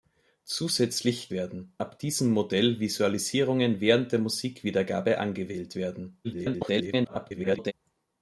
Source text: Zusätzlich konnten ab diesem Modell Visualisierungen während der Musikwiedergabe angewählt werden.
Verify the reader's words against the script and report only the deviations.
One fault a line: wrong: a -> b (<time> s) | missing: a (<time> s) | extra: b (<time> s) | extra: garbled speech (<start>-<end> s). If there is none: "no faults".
wrong: konnten -> werden (1.3 s)
extra: garbled speech (6.2-7.7 s)